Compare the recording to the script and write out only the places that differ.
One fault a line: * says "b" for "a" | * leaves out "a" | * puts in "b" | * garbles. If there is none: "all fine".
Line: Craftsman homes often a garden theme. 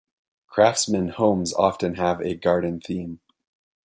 * puts in "have"